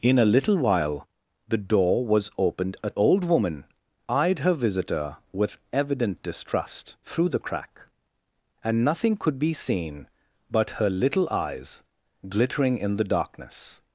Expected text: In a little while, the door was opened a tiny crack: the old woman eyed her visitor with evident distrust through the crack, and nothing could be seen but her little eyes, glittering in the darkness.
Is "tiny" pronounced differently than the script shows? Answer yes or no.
yes